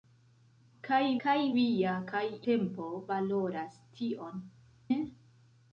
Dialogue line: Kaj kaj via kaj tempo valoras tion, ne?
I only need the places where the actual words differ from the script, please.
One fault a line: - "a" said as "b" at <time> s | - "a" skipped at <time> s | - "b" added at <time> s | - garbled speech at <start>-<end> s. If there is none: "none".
none